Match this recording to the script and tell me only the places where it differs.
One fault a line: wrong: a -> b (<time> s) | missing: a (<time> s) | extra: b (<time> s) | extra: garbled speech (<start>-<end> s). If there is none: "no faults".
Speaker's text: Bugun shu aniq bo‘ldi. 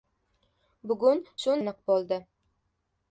no faults